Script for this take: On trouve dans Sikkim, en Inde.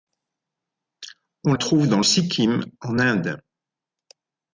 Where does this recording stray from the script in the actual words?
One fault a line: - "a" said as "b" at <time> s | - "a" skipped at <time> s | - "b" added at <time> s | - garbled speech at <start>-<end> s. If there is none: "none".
none